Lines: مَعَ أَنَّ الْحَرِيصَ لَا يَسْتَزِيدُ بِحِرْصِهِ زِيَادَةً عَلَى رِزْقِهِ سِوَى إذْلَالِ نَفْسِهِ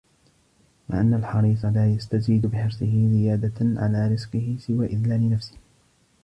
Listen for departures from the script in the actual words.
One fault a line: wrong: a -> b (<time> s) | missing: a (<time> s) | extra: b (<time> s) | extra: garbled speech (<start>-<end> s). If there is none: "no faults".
no faults